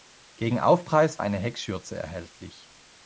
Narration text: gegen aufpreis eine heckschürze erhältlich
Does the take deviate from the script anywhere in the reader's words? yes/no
no